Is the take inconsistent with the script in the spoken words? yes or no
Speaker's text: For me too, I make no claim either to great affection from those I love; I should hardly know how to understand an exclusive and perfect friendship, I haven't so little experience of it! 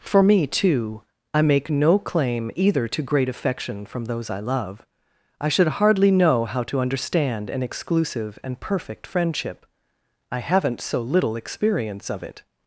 no